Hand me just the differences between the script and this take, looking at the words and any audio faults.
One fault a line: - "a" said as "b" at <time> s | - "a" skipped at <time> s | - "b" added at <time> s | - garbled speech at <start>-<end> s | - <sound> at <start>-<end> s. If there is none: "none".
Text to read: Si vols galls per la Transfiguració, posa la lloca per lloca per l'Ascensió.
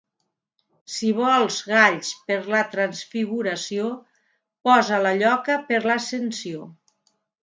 - "lloca per" skipped at 5.8 s